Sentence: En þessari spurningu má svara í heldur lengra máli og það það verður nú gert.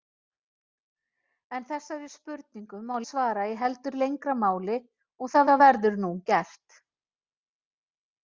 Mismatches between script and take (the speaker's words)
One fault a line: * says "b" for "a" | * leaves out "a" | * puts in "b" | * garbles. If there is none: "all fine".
all fine